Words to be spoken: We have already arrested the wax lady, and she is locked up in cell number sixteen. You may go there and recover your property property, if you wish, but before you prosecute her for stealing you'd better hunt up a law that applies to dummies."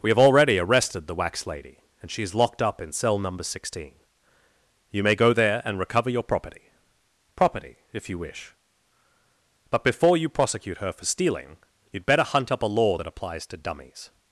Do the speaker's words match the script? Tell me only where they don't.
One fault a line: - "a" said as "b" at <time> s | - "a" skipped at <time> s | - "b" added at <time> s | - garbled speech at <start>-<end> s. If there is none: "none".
none